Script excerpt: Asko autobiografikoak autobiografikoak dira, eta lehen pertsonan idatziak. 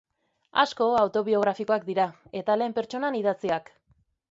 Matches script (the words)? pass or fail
fail